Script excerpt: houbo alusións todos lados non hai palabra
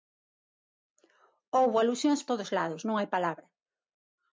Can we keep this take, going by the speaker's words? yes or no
yes